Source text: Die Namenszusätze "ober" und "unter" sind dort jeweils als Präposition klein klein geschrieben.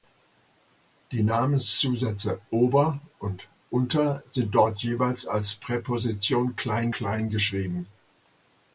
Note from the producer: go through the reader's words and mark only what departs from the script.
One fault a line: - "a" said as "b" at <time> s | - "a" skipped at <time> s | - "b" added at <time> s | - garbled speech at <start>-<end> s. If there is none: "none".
none